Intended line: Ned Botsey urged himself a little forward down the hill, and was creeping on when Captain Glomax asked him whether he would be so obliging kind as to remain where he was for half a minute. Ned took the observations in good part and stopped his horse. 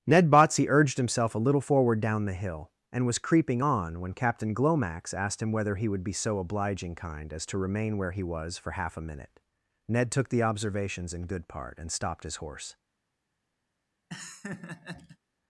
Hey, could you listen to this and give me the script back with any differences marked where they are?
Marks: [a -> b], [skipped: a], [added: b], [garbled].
Ned Botsey urged himself a little forward down the hill, and was creeping on when Captain Glomax asked him whether he would be so obliging kind as to remain where he was for half a minute. Ned took the observations in good part and stopped his horse.